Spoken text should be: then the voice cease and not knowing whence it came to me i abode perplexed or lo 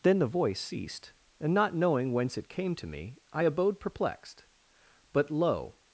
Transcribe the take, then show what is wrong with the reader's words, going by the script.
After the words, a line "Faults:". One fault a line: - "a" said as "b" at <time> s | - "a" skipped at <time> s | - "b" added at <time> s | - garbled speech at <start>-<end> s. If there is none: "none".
then the voice ceased and not knowing whence it came to me i abode perplexed but lo
Faults:
- "cease" said as "ceased" at 0.6 s
- "or" said as "but" at 5.1 s